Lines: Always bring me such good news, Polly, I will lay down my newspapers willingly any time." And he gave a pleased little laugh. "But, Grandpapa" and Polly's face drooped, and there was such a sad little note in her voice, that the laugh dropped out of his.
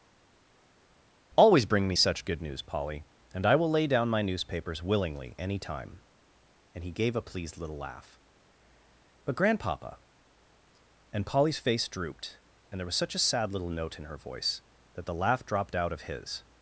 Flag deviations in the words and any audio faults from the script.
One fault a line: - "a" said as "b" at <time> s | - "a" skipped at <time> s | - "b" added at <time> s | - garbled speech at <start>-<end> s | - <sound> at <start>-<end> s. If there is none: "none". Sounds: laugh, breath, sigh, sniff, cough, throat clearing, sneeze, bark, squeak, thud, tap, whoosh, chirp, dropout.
- "and" added at 3.3 s